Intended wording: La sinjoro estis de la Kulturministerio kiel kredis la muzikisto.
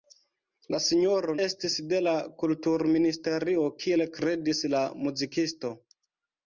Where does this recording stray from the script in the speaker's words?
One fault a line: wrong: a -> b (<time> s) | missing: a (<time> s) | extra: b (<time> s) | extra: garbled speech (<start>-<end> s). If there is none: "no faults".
no faults